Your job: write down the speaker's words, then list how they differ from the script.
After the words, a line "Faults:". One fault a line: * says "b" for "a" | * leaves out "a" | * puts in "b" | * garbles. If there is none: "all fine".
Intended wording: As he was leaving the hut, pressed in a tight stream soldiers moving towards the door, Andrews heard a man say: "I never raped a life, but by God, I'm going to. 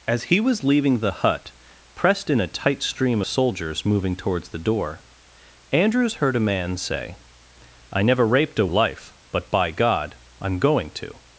As he was leaving the hut, pressed in a tight stream soldiers moving towards the door, Andrews heard a man say: "I never raped a life, but by God, I'm going to.
Faults:
all fine